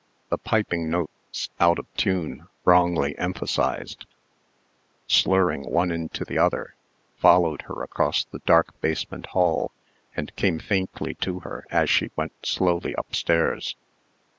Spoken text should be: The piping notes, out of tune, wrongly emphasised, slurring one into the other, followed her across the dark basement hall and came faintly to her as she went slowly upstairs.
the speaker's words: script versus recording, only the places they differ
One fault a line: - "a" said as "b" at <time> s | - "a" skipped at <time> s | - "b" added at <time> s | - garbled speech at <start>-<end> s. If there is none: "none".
none